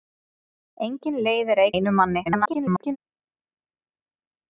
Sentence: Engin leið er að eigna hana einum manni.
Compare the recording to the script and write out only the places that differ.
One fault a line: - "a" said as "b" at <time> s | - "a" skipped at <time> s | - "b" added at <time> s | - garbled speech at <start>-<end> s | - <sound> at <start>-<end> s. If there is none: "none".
- "eigna hana" skipped at 1.7 s
- garbled speech at 2.2-3.0 s